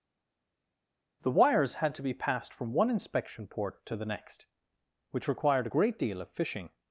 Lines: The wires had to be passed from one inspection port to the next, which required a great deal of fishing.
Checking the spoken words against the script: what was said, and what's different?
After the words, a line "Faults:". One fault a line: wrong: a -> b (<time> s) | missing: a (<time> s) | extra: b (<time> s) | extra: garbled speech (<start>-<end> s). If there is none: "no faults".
The wires had to be passed from one inspection port to the next, which required a great deal of fishing.
Faults:
no faults